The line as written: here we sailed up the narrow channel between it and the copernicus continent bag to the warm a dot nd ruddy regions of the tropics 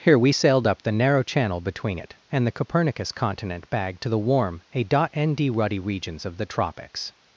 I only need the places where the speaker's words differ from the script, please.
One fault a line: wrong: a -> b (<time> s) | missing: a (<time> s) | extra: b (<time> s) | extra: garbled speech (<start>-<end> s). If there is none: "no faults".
no faults